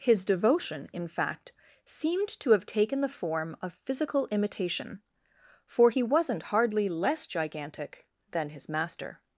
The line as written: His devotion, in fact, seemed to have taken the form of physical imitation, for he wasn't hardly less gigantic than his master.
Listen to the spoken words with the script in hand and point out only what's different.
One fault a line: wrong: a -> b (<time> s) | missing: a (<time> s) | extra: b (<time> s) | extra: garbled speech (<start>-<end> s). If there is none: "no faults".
no faults